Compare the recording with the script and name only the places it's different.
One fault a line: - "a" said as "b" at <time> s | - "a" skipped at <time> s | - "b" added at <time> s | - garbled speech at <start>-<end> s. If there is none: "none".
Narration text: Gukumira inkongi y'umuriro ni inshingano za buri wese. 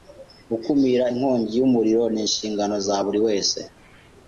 none